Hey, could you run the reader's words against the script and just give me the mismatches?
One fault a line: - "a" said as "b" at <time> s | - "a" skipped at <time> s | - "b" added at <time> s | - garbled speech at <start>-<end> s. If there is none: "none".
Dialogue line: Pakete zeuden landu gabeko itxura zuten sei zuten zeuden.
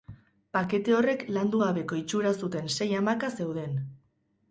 - "zeuden" said as "horrek" at 1.0 s
- "zuten" said as "hamaka" at 3.0 s